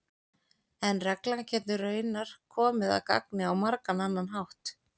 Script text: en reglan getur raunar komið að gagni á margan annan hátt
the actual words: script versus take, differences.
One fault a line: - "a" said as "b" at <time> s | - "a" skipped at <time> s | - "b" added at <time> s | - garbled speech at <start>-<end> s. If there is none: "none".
none